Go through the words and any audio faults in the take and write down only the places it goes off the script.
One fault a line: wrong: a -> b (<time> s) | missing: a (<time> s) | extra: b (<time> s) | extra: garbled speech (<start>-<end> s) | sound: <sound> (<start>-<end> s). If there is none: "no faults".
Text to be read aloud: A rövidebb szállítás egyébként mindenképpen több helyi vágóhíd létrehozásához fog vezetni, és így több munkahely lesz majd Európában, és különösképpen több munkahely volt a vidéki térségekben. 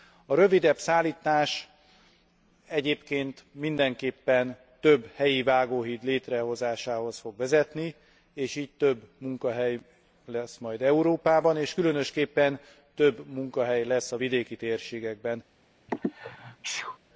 wrong: volt -> lesz (13.8 s)
sound: sneeze (15.9-17.0 s)